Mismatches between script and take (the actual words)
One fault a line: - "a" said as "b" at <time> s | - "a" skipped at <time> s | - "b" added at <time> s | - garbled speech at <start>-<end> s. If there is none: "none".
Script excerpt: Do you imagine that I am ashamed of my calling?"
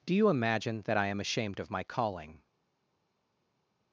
none